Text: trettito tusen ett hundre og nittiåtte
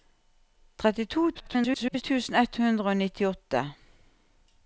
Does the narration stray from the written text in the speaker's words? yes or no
yes